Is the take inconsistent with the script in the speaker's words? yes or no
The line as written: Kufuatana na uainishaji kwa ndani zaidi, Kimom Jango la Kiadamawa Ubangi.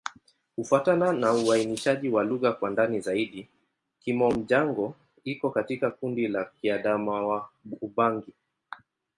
yes